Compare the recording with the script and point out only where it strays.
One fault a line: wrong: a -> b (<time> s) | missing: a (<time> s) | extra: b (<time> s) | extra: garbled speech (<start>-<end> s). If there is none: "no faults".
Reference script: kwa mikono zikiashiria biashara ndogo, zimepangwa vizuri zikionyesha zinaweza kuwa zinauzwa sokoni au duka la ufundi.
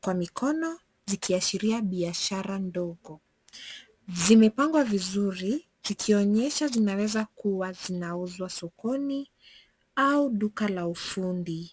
no faults